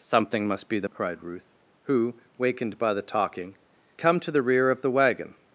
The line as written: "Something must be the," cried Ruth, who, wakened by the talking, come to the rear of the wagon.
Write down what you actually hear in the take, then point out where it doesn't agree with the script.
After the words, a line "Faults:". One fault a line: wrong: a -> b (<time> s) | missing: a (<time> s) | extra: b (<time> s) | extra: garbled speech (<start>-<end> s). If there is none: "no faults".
"Something must be the," cried Ruth, who, wakened by the talking, come to the rear of the wagon.
Faults:
no faults